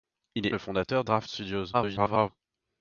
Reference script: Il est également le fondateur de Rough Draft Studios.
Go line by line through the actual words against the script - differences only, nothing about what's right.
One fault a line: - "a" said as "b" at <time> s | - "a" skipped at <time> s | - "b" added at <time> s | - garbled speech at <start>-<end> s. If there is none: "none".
- "également" skipped at 0.6 s
- "de Rough" skipped at 1.0 s
- garbled speech at 1.7-2.3 s